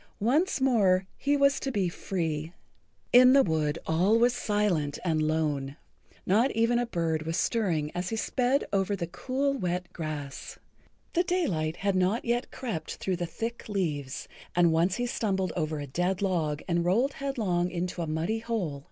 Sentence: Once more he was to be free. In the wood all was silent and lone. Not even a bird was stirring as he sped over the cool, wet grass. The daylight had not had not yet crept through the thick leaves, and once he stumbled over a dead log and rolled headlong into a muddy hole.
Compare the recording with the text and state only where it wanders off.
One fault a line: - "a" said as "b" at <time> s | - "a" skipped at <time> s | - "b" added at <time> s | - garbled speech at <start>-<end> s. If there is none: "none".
- "had not" skipped at 12.2 s